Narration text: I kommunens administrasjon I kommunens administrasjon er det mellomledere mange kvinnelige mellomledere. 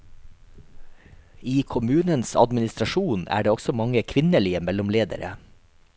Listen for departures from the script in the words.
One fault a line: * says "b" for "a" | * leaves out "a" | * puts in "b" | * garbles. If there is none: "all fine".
* leaves out "I kommunens administrasjon"
* says "også" for "mellomledere"